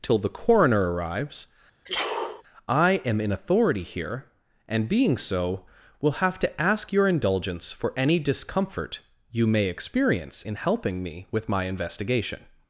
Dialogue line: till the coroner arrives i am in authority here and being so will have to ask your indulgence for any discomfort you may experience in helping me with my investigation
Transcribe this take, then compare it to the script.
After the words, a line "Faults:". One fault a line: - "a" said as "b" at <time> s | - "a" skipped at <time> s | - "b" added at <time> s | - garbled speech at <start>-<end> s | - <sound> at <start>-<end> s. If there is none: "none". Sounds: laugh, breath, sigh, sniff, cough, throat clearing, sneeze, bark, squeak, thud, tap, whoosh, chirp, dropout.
till the coroner arrives i am in authority here and being so will have to ask your indulgence for any discomfort you may experience in helping me with my investigation
Faults:
- sneeze at 1.8-2.4 s